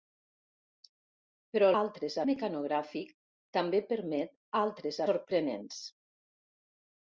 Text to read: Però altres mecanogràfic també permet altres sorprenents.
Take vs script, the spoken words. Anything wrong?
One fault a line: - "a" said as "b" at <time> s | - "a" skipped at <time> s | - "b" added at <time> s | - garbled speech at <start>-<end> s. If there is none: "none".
none